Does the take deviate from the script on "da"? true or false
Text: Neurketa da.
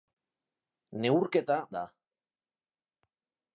false